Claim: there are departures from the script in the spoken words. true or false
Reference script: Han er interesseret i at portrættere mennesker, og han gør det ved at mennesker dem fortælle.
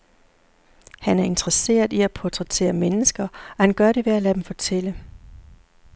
true